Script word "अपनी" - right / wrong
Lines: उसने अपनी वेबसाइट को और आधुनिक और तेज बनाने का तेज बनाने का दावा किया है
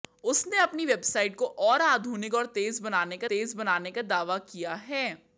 right